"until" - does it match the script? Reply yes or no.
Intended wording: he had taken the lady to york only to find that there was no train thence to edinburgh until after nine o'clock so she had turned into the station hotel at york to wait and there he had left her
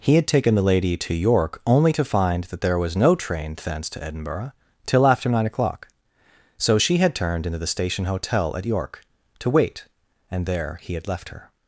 no